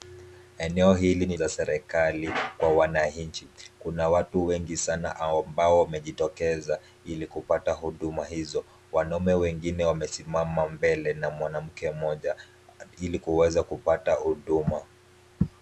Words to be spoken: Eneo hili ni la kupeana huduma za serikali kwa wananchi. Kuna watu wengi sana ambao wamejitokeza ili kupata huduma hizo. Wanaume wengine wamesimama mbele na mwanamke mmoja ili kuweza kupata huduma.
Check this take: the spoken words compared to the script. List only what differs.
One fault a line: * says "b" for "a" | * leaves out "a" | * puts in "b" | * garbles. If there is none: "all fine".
* leaves out "la kupeana huduma"